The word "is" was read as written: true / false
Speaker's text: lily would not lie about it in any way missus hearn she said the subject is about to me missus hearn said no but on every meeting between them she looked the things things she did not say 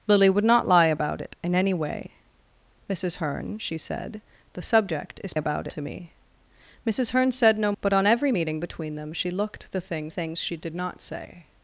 true